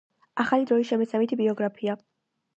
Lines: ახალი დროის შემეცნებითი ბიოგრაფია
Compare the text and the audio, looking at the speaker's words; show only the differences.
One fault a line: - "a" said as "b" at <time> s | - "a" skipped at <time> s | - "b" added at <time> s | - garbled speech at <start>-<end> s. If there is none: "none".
none